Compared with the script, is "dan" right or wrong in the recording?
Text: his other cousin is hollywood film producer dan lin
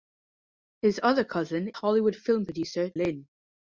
wrong